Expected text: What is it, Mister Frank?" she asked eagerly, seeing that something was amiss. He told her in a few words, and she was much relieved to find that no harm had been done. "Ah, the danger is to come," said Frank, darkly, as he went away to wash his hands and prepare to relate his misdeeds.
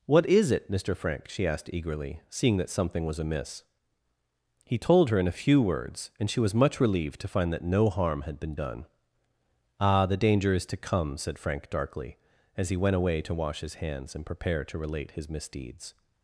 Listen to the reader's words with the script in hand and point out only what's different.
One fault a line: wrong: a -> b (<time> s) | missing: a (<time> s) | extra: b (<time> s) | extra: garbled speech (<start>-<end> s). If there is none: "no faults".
no faults